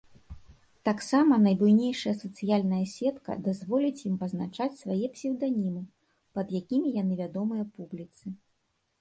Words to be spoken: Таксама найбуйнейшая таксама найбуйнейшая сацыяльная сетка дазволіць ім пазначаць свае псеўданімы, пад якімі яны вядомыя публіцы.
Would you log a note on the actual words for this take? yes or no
yes